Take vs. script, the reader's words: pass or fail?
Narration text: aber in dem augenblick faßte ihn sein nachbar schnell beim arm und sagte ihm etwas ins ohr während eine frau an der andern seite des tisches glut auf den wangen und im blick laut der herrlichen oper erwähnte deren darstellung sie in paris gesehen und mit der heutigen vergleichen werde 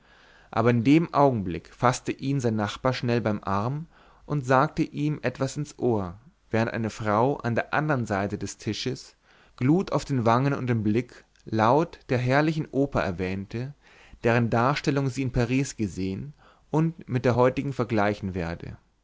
pass